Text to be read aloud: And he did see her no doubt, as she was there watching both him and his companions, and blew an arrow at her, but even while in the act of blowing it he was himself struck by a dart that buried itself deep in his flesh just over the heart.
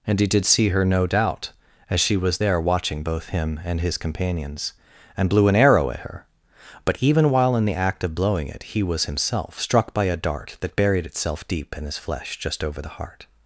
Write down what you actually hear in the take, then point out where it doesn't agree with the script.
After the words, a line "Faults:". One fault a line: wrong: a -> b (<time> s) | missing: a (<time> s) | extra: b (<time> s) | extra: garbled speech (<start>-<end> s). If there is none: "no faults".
And he did see her no doubt, as she was there watching both him and his companions, and blew an arrow at her, but even while in the act of blowing it he was himself struck by a dart that buried itself deep in his flesh just over the heart.
Faults:
no faults